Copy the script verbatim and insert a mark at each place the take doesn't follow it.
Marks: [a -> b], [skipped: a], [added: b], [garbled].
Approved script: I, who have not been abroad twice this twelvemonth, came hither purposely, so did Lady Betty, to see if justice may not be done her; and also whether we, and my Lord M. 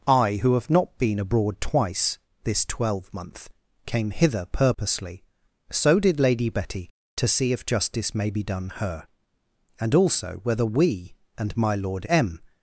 I, who have not been abroad twice this twelvemonth, came hither purposely, so did Lady Betty, to see if justice may [skipped: not] be done her; and also whether we, and my Lord M.